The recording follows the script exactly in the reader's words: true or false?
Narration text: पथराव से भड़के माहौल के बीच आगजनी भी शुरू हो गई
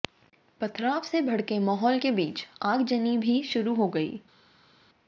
true